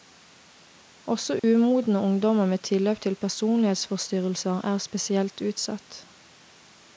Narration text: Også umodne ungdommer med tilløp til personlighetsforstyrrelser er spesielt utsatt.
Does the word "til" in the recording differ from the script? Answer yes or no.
no